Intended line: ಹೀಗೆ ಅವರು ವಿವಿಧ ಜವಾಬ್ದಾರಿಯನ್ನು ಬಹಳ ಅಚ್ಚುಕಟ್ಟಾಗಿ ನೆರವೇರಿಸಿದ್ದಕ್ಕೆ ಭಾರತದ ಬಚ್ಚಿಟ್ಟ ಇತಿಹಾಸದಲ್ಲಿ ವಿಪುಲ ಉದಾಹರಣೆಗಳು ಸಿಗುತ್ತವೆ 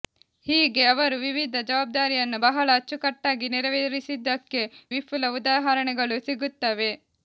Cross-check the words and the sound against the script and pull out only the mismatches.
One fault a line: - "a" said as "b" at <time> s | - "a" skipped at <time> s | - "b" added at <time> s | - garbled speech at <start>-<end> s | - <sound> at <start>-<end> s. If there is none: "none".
- "ಭಾರತದ ಬಚ್ಚಿಟ್ಟ ಇತಿಹಾಸದಲ್ಲಿ" skipped at 4.6 s